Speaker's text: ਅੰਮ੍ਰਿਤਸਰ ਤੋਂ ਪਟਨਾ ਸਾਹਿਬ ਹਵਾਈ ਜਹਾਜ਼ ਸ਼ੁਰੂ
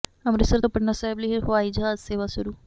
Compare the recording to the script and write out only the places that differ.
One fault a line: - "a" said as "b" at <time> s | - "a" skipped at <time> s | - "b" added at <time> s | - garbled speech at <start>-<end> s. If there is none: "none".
- "ਲਈ" added at 1.2 s
- "ਸੇਵਾ" added at 2.0 s